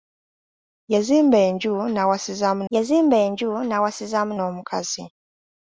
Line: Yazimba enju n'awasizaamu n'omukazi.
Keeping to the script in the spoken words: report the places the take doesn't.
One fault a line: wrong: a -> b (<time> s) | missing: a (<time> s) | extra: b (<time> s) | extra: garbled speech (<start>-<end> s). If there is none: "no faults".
extra: yazimba enju n'awasizaamu (2.7 s)